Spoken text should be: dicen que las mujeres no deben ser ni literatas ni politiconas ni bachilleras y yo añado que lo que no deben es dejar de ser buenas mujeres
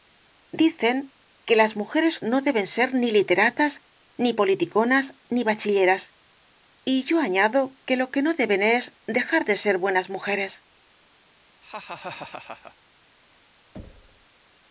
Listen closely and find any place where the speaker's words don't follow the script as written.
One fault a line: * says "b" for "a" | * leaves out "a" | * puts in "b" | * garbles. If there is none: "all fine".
all fine